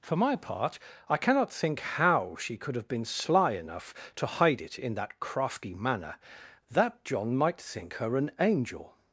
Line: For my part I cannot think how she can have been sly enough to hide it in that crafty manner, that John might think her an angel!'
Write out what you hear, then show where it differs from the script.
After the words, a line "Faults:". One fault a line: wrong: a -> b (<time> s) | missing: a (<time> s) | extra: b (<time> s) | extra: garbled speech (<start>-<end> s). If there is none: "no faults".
For my part I cannot think how she could have been sly enough to hide it in that crafty manner, that John might think her an angel!'
Faults:
wrong: can -> could (2.6 s)